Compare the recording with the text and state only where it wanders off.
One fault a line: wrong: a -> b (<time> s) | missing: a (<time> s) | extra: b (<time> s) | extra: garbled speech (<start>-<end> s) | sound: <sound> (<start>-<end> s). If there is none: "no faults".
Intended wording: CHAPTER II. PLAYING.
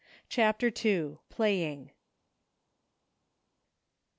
no faults